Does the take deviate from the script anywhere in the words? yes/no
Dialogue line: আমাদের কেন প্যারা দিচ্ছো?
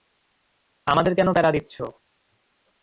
no